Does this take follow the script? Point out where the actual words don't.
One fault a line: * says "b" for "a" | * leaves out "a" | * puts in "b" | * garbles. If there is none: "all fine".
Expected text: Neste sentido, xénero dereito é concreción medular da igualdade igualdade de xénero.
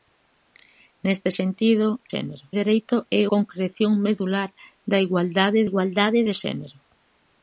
all fine